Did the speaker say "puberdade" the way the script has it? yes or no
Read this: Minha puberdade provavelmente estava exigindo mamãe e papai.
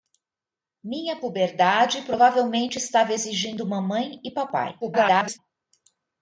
yes